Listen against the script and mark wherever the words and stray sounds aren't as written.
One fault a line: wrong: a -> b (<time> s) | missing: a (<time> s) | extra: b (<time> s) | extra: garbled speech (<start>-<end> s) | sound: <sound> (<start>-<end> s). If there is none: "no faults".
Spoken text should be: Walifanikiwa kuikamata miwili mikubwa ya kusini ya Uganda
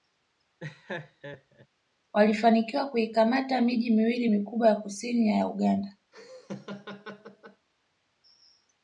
sound: laugh (0.6-1.7 s)
extra: miji (3.6 s)
sound: laugh (6.1-7.7 s)